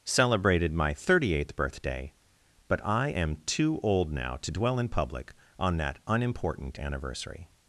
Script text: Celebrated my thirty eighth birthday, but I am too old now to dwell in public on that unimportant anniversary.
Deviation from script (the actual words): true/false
false